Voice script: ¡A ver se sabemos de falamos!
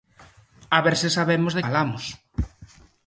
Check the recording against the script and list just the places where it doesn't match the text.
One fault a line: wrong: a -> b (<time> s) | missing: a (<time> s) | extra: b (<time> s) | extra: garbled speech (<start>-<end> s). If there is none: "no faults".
no faults